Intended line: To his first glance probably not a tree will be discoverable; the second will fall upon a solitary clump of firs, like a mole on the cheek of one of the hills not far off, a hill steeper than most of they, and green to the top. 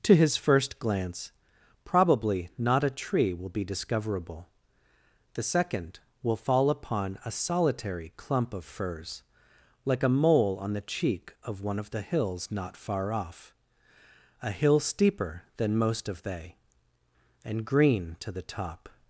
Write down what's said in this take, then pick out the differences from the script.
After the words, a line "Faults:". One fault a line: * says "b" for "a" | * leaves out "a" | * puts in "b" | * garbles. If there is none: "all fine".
To his first glance probably not a tree will be discoverable; the second will fall upon a solitary clump of firs, like a mole on the cheek of one of the hills not far off, a hill steeper than most of they, and green to the top.
Faults:
all fine